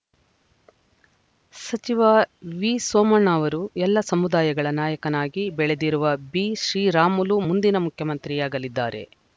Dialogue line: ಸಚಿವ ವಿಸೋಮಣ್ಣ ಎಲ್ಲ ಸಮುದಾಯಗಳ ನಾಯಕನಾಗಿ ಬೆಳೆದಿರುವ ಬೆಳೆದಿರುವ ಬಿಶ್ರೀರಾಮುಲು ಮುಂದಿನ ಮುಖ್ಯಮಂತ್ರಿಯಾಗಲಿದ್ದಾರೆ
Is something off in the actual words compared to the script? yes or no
yes